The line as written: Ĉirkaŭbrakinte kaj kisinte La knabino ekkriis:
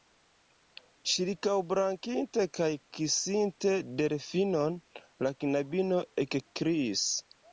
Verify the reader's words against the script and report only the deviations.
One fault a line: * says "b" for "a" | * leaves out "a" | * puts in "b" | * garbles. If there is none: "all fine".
* puts in "Delfinon"